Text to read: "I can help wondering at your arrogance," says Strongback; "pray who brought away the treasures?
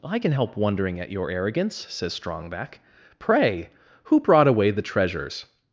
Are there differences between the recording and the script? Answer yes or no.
no